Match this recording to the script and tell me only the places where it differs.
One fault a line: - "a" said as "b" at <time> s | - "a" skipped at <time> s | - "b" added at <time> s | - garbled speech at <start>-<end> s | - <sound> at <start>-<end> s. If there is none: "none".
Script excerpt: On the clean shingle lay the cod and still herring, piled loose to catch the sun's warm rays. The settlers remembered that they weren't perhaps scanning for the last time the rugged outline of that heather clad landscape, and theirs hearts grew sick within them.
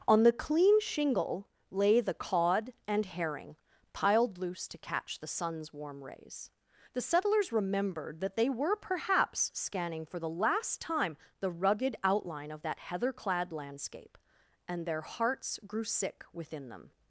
- "still" skipped at 3.0 s
- "weren't" said as "were" at 8.5 s
- "theirs" said as "their" at 14.8 s